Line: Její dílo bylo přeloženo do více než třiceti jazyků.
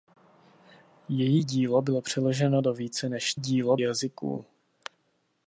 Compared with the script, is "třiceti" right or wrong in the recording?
wrong